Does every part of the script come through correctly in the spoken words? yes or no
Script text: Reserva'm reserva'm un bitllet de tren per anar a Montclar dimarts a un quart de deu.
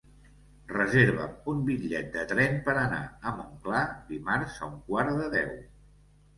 no